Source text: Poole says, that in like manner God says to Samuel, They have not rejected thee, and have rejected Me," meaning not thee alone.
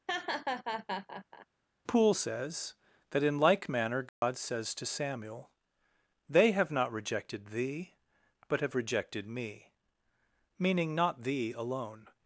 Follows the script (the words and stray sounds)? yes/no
no